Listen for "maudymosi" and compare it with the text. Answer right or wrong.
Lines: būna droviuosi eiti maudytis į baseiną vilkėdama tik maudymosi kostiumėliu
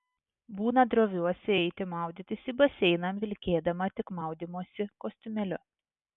right